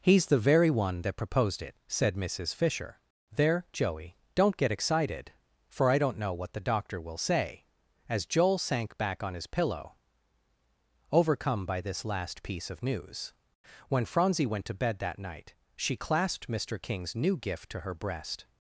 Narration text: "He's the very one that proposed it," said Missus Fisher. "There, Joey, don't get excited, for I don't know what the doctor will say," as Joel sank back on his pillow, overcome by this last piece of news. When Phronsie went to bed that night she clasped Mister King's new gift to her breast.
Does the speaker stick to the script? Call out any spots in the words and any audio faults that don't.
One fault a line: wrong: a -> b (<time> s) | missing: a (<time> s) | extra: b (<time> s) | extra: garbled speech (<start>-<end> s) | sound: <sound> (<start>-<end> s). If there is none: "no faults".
no faults